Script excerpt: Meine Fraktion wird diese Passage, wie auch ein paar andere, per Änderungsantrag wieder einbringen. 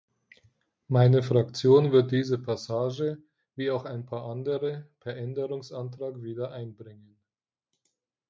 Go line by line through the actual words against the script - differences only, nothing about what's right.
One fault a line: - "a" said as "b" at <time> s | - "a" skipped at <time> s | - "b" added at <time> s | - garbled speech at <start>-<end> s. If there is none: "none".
none